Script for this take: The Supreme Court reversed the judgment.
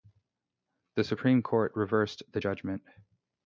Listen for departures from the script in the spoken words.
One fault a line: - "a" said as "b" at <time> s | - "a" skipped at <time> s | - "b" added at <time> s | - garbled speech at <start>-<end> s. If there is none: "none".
none